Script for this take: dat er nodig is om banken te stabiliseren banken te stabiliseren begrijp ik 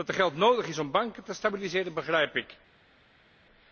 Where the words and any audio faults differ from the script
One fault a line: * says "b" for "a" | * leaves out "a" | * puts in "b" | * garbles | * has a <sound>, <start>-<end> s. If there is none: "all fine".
* puts in "geld"
* leaves out "banken te stabiliseren"